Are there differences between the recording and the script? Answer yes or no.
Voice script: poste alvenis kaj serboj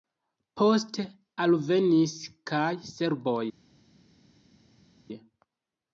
no